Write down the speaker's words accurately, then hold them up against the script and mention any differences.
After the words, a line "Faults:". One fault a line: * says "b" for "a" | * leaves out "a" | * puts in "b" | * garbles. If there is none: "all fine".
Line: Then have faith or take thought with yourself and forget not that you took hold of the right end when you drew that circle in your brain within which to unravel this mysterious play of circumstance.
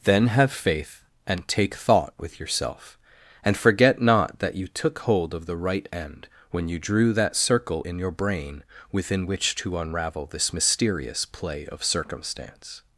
Then have faith and take thought with yourself and forget not that you took hold of the right end when you drew that circle in your brain within which to unravel this mysterious play of circumstance.
Faults:
* says "and" for "or"